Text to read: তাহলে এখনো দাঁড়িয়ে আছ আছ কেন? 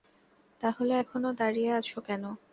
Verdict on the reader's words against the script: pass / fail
fail